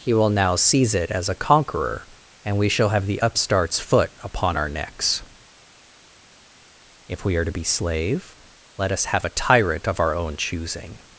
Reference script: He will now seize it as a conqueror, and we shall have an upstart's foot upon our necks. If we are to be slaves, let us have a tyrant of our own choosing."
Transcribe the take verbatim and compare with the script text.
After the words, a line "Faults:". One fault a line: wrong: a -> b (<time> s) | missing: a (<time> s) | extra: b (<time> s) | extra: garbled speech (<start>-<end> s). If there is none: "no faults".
He will now seize it as a conqueror, and we shall have the upstart's foot upon our necks. If we are to be slave, let us have a tyrant of our own choosing."
Faults:
wrong: an -> the (3.0 s)
wrong: slaves -> slave (7.6 s)